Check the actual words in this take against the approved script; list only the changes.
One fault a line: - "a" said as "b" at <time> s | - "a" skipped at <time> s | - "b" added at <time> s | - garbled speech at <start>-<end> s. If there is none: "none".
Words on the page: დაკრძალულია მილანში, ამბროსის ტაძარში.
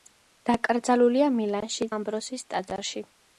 none